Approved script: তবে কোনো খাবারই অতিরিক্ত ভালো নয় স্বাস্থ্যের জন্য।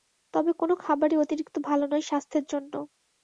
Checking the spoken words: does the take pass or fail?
pass